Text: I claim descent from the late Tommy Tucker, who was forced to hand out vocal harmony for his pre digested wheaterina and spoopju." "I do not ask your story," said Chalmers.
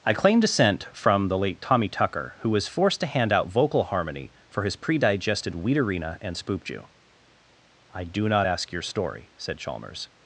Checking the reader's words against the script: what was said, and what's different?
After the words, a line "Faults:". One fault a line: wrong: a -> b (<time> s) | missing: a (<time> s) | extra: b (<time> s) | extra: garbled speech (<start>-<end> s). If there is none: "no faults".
I claim descent from the late Tommy Tucker, who was forced to hand out vocal harmony for his pre digested wheaterina and spoopju." "I do not ask your story," said Chalmers.
Faults:
no faults